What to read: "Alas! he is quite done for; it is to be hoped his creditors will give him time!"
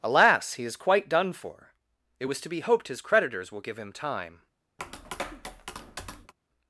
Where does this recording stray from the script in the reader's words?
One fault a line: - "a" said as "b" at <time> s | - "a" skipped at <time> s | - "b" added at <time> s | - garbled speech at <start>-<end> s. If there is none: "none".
- "is" said as "was" at 2.2 s